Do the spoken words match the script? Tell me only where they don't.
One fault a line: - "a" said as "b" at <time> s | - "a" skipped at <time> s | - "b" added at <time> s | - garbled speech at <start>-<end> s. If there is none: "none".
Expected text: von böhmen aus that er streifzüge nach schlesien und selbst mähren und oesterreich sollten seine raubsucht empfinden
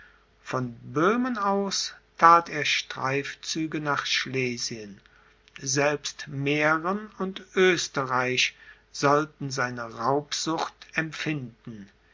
- "und" skipped at 5.0 s